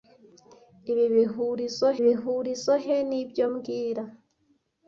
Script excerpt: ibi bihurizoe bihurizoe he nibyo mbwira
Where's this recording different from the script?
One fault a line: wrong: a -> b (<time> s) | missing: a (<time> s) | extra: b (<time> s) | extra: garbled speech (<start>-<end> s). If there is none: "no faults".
no faults